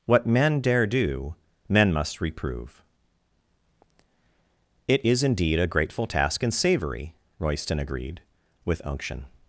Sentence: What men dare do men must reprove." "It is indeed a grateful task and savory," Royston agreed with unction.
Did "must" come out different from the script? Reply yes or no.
no